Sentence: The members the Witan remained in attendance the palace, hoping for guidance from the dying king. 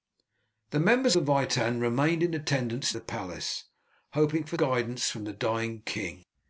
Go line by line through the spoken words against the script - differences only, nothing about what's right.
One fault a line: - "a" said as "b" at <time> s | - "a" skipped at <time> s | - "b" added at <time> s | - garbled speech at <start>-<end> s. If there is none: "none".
none